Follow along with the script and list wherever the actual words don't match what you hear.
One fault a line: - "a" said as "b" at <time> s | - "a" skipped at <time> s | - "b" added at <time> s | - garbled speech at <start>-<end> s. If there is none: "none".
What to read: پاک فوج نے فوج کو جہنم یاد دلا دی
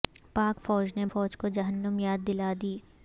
none